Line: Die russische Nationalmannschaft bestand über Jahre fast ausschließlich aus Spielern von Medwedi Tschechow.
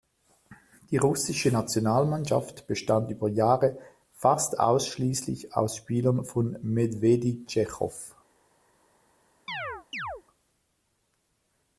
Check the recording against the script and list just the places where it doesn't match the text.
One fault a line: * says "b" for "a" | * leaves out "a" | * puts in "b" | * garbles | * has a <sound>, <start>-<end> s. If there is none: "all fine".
* has a chirp, 9.5-10.2 s